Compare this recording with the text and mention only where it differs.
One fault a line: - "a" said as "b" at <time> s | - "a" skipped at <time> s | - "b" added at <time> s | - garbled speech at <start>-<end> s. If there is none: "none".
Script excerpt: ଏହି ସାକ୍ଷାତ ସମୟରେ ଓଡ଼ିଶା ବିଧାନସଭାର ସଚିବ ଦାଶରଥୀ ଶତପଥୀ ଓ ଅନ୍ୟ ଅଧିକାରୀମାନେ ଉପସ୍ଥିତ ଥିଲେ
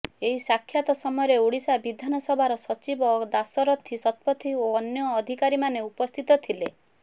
none